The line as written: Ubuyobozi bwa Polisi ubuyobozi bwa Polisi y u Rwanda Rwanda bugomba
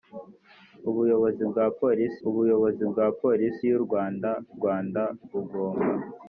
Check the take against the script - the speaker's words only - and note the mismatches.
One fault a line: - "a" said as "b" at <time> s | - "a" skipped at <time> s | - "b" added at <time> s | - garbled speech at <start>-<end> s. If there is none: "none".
none